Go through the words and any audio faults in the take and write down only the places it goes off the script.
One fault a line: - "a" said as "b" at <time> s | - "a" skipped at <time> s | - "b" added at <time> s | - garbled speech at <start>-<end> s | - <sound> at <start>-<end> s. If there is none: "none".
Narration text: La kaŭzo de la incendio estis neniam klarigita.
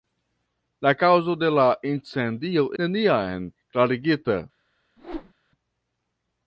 - "estis" skipped at 2.6 s
- whoosh at 5.0-5.3 s